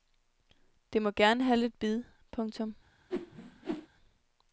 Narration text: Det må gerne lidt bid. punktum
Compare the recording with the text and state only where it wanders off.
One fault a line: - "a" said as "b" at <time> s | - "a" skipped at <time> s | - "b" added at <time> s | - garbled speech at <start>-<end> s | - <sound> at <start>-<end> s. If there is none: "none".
- "have" added at 1.4 s
- whoosh at 3.1-3.9 s